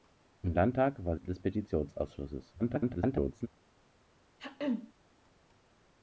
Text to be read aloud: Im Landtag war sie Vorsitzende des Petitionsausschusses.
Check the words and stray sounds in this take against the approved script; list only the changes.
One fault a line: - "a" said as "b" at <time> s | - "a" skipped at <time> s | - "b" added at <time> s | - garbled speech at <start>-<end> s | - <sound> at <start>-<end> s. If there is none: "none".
- "sie Vorsitzende" skipped at 1.1 s
- garbled speech at 2.6-3.5 s
- throat clearing at 4.4-4.9 s